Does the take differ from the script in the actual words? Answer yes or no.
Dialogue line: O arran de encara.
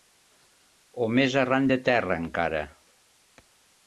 yes